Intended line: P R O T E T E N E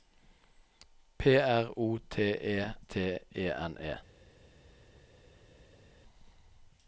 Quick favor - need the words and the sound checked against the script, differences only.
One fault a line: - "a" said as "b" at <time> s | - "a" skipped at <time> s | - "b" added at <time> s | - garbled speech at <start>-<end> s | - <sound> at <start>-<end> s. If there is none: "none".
none